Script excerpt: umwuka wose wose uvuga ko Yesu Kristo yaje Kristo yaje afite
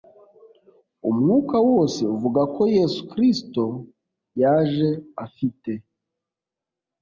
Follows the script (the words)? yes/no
no